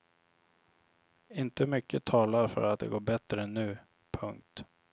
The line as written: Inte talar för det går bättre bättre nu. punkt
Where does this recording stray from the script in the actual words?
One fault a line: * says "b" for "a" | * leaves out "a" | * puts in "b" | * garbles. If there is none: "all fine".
* puts in "mycket"
* puts in "att"
* leaves out "bättre"